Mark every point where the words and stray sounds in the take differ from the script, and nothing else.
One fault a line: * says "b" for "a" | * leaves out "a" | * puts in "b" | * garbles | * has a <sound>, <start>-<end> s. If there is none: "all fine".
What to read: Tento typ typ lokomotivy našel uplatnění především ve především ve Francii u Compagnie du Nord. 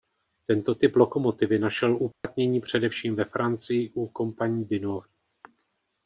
* leaves out "typ"
* has a dropout, 2.1-2.2 s
* leaves out "především ve"